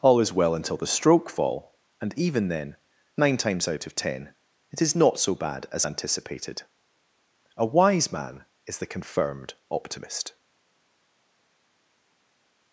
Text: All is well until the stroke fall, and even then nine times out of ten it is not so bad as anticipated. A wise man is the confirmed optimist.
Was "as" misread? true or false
false